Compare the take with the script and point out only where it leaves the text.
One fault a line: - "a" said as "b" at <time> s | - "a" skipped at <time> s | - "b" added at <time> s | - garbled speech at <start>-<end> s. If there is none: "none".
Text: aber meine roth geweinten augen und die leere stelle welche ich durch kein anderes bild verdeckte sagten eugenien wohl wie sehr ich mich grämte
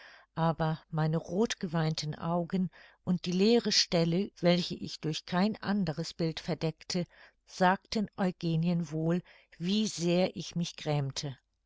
none